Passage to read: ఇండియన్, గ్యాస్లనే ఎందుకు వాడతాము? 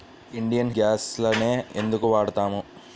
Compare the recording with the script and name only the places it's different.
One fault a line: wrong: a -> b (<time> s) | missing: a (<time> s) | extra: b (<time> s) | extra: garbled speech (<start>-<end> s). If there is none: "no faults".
no faults